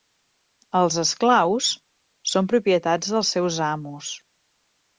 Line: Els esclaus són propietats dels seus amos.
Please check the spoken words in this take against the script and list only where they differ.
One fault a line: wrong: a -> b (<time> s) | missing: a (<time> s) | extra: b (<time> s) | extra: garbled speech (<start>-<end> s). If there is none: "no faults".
no faults